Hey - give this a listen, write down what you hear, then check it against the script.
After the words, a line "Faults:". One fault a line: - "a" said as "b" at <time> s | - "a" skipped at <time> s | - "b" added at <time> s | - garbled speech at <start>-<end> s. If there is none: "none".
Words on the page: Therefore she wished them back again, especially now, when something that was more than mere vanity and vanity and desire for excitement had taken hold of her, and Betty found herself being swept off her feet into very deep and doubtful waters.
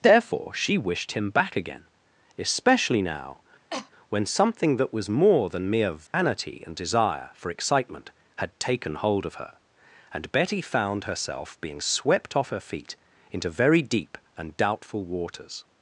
Therefore she wished him back again, especially now, when something that was more than mere vanity and desire for excitement had taken hold of her, and Betty found herself being swept off her feet into very deep and doubtful waters.
Faults:
- "them" said as "him" at 1.1 s
- "vanity and" skipped at 6.7 s